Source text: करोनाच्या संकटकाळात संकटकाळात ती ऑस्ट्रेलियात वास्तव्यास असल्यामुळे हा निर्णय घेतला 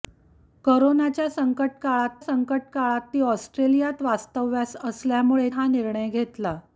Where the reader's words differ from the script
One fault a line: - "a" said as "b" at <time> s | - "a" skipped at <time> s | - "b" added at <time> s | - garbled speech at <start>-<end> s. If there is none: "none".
none